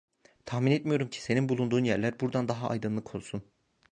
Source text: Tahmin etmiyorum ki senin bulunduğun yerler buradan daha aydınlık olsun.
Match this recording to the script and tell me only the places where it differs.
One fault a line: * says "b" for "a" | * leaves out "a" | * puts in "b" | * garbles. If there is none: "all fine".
all fine